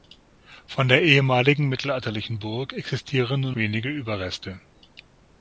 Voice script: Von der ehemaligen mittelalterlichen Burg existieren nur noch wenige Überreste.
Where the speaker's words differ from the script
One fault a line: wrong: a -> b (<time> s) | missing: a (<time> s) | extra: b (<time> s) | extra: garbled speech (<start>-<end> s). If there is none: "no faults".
missing: noch (3.5 s)